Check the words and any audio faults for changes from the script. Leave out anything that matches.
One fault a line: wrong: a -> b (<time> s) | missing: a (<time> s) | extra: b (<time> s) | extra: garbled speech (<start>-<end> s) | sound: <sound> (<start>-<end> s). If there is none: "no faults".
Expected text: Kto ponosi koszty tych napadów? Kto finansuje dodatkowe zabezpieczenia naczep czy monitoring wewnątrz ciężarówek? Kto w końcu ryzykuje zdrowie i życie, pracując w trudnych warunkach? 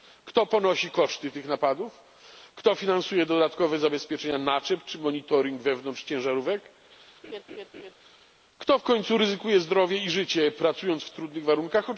sound: laugh (7.2-7.9 s)